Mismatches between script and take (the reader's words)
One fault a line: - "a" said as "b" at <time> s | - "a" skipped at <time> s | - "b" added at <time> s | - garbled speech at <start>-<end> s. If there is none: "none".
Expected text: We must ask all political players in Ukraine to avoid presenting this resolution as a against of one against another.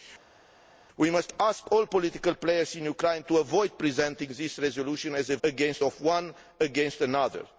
none